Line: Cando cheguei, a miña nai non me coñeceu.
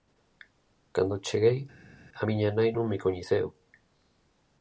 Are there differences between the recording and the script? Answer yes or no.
no